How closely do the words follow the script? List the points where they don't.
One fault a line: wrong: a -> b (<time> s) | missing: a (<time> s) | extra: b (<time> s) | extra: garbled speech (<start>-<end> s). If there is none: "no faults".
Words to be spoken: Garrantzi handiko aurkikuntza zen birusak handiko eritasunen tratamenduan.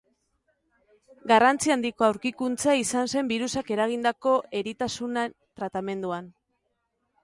extra: izan (2.9 s)
wrong: handiko -> eragindako (3.8 s)